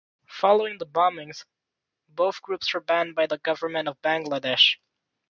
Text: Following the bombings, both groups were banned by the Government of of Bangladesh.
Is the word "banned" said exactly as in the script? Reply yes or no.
yes